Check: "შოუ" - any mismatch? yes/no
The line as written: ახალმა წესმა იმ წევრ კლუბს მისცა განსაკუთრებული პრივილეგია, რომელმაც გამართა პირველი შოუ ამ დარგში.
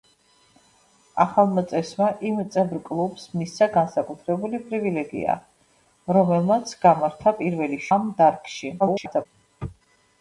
yes